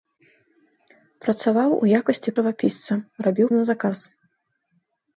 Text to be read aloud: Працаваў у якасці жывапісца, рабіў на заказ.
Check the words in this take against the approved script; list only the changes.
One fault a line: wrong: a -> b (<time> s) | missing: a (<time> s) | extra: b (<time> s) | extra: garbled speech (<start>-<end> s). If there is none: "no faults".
no faults